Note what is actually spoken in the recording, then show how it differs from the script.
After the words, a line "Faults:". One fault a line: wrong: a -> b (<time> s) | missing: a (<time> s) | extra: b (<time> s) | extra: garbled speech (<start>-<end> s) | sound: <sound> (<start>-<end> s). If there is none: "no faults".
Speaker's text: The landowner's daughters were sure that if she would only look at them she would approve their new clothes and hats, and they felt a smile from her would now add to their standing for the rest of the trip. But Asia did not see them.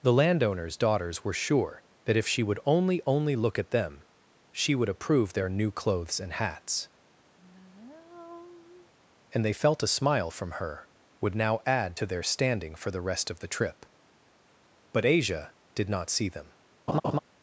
The landowner's daughters were sure that if she would only only look at them she would approve their new clothes and hats, and they felt a smile from her would now add to their standing for the rest of the trip. But Asia did not see them.
Faults:
extra: only (3.0 s)
sound: sigh (7.4-8.9 s)
sound: laugh (16.9-17.2 s)